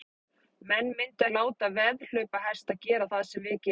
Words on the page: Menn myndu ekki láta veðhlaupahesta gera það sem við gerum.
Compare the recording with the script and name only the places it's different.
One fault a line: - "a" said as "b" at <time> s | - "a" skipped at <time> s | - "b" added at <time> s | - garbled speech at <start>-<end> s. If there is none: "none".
- "ekki" skipped at 1.3 s